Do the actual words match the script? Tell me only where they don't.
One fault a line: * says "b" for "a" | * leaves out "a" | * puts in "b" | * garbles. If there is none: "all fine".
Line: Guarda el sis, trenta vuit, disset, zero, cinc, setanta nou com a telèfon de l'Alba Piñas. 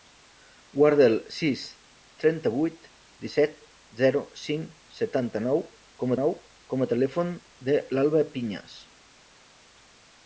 * puts in "nou com"